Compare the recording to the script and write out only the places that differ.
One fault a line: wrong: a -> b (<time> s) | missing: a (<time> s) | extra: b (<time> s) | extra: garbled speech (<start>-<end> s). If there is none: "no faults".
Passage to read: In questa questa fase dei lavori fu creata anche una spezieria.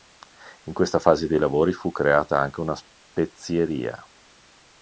missing: questa (1.0 s)